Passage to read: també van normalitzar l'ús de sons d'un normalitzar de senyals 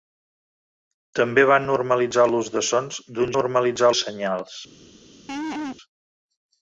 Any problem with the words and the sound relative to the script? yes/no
yes